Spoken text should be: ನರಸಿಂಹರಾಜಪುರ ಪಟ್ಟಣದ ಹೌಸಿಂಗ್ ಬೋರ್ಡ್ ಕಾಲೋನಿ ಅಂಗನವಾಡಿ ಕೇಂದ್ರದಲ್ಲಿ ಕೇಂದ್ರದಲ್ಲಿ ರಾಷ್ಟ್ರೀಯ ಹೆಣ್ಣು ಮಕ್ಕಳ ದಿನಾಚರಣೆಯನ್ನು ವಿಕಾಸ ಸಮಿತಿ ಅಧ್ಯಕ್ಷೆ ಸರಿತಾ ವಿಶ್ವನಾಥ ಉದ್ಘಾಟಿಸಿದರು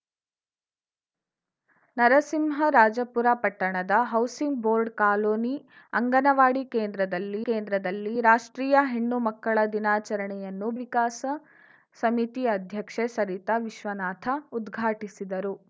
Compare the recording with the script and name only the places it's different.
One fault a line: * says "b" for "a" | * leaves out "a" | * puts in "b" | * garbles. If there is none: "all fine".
all fine